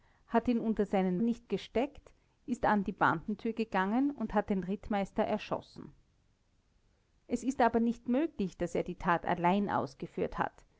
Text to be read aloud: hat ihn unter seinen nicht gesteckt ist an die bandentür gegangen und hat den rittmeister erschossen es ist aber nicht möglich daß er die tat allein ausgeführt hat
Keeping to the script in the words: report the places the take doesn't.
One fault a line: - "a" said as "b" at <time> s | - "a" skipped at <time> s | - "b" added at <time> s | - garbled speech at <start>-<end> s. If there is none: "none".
none